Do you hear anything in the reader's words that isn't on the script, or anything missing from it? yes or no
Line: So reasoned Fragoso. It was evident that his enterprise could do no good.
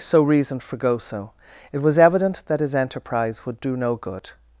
yes